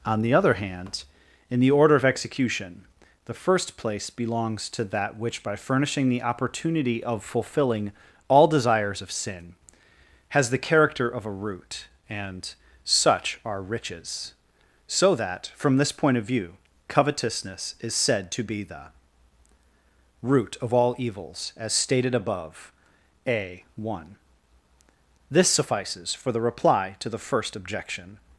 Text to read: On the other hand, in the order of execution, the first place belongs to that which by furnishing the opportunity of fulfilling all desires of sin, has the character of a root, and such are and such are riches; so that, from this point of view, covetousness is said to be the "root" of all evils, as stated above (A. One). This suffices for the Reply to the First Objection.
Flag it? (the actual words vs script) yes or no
yes